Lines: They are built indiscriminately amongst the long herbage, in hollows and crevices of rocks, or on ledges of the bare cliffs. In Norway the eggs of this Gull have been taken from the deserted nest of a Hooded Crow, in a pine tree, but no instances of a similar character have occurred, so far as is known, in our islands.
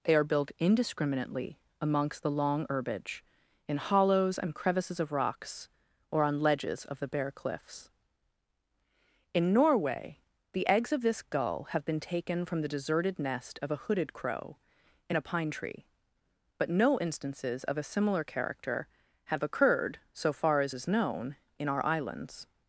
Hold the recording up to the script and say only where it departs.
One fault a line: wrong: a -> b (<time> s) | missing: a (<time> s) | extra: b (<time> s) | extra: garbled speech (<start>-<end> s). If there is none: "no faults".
no faults